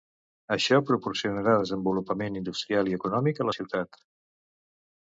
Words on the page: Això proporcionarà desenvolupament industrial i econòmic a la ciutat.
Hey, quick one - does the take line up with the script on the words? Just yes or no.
yes